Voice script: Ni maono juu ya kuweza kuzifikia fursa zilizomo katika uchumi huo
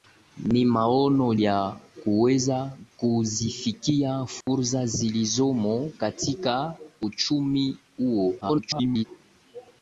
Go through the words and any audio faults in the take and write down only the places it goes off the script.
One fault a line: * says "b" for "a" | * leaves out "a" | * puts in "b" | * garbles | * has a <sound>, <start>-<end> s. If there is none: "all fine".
* leaves out "juu"
* has a dropout, 4.4-4.5 s
* garbles